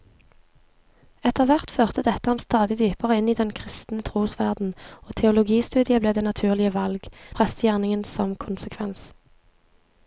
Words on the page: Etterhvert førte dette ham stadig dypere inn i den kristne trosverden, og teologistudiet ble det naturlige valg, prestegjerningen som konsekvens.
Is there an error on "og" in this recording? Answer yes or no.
no